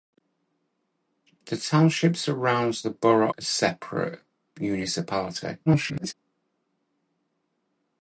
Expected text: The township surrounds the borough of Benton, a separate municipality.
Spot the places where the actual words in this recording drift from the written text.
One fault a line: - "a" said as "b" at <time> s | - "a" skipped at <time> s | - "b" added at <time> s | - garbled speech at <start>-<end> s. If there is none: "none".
- "of Benton" skipped at 3.3 s
- garbled speech at 5.7-6.1 s